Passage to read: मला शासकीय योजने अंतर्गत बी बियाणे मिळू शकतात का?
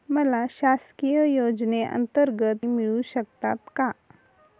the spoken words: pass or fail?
fail